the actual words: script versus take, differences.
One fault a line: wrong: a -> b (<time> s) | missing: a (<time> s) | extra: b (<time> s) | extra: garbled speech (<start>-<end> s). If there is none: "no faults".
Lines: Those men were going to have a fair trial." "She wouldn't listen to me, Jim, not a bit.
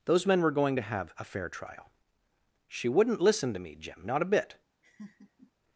no faults